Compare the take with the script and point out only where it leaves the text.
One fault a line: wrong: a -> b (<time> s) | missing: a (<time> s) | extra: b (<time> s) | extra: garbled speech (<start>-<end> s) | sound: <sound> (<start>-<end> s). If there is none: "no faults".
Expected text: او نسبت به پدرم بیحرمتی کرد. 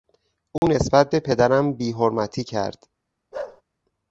sound: dropout (0.6-0.6 s)
sound: bark (3.3-3.6 s)